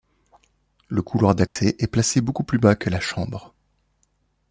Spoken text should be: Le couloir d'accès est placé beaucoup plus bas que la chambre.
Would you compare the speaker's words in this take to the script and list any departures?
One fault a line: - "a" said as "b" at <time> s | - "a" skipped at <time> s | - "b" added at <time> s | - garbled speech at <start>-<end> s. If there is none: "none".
none